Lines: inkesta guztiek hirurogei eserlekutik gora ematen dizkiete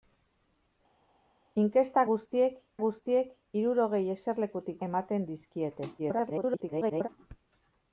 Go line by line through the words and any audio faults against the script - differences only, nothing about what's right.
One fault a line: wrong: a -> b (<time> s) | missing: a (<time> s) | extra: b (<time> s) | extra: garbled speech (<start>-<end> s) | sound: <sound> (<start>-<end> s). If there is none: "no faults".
extra: guztiek (2.8 s)
missing: gora (4.8 s)
extra: garbled speech (6.0-7.1 s)